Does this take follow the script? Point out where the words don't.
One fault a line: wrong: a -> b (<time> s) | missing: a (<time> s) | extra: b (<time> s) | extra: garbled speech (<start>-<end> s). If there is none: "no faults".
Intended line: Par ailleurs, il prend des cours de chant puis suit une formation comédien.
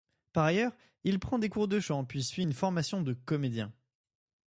extra: de (3.0 s)